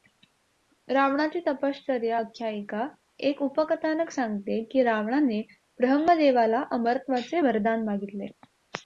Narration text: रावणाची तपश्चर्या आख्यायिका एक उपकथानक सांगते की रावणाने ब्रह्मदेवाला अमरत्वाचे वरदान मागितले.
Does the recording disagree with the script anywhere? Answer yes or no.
no